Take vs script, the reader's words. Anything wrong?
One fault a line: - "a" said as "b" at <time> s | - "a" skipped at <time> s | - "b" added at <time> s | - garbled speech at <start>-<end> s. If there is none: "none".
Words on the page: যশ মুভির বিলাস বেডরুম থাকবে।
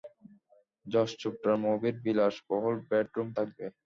- "চোপড়ার" added at 1.2 s
- "বহুল" added at 2.5 s